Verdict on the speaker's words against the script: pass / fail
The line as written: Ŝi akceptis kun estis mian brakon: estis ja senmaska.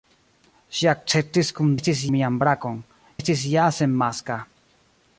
pass